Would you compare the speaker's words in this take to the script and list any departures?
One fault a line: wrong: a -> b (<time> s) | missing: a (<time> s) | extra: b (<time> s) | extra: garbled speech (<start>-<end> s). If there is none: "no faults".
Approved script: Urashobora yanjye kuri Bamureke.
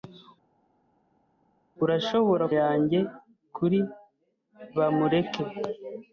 no faults